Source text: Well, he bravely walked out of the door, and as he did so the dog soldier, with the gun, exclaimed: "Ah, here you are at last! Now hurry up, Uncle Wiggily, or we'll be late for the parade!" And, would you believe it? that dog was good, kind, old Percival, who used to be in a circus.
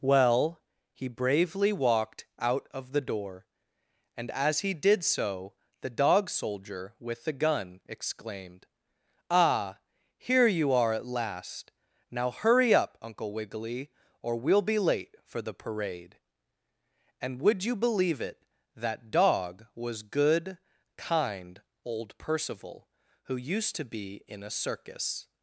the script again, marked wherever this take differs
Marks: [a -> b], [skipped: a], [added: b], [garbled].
Well, he bravely walked out of the door, and as he did so the dog soldier, with the gun, exclaimed: "Ah, here you are at last! Now hurry up, Uncle Wiggily, or we'll be late for the parade!" And, would you believe it? that dog was good, kind, old Percival, who used to be in a circus.